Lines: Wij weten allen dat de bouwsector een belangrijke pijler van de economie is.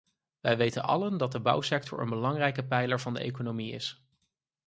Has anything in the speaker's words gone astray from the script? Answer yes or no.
no